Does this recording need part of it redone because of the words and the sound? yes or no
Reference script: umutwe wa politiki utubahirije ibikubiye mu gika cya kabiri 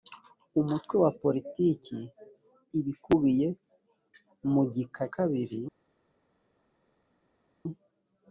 yes